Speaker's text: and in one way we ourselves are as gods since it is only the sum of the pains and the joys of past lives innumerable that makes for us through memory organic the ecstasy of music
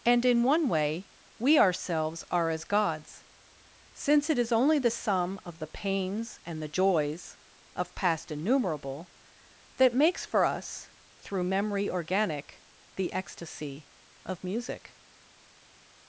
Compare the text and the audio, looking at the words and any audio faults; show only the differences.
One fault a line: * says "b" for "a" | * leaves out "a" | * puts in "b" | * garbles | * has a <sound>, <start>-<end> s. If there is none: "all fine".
* leaves out "lives"